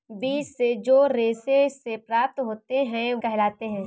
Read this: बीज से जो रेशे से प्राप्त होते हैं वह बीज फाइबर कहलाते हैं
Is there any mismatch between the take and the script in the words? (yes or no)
yes